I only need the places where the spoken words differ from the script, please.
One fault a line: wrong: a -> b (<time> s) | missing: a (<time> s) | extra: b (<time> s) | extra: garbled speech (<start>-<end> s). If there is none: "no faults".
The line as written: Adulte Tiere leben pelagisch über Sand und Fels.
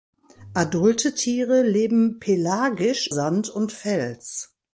missing: über (3.0 s)